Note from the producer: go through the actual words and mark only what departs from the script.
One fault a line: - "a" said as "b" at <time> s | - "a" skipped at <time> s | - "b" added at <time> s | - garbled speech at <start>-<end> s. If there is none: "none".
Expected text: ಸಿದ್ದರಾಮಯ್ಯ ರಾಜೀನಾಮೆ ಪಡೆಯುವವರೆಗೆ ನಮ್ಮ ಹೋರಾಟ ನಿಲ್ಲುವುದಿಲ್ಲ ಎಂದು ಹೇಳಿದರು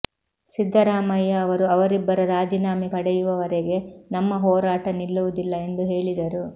- "ಅವರು ಅವರಿಬ್ಬರ" added at 1.4 s